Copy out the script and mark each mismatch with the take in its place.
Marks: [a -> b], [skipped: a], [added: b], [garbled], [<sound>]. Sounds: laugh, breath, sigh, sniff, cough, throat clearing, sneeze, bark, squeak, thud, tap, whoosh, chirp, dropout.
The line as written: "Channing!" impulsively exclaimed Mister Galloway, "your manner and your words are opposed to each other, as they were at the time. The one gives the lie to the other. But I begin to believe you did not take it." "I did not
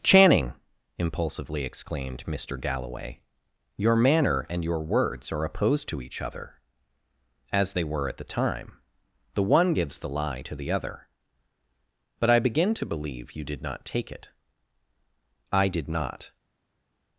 "Channing!" impulsively exclaimed Mister Galloway, "your manner and your words are opposed to each other, as they were at the time. The one gives the lie to the other. But I begin to believe you did not take it." "I did not